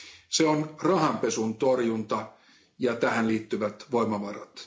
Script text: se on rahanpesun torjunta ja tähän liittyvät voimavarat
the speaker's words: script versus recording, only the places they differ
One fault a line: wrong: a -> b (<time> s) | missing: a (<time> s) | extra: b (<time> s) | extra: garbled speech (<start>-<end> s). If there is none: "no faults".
no faults